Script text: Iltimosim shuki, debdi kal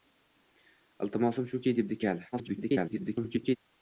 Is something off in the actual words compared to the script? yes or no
yes